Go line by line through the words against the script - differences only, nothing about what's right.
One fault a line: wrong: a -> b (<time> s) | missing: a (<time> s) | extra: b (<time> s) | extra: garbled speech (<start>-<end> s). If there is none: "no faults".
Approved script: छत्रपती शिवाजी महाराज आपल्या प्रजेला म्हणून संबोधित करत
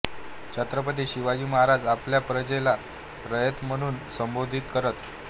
extra: रयत (3.2 s)